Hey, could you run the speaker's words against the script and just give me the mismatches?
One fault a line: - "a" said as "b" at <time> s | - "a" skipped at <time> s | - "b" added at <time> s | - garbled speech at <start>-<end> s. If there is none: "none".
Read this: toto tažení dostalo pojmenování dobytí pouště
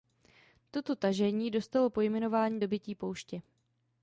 none